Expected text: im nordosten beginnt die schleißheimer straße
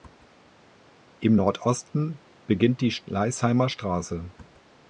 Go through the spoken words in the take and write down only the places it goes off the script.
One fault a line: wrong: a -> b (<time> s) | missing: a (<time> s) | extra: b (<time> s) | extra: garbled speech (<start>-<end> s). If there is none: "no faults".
no faults